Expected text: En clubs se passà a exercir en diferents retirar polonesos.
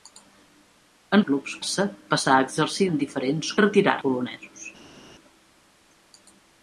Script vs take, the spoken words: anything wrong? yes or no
no